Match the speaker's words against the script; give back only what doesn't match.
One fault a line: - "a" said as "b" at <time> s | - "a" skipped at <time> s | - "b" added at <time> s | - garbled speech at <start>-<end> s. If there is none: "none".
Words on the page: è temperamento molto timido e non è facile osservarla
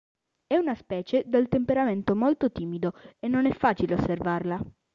- "una specie dal" added at 0.6 s